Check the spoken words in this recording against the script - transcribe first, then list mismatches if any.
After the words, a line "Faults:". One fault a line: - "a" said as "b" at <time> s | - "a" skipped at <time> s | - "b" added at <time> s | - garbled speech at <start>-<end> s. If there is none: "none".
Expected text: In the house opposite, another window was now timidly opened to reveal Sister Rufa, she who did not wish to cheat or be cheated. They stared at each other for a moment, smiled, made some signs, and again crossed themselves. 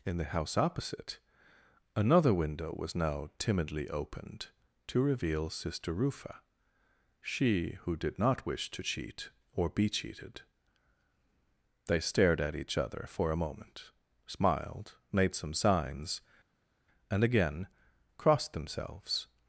In the house opposite, another window was now timidly opened to reveal Sister Rufa, she who did not wish to cheat or be cheated. They stared at each other for a moment, smiled, made some signs, and again crossed themselves.
Faults:
none